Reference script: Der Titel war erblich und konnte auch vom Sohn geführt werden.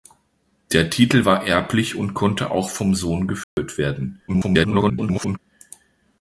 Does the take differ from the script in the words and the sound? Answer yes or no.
yes